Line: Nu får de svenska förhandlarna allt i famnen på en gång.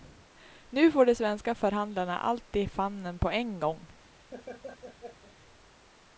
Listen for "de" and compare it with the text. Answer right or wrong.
right